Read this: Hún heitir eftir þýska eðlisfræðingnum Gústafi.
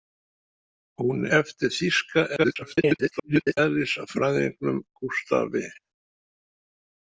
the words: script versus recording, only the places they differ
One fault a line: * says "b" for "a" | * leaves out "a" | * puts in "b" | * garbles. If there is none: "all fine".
* leaves out "heitir"
* garbles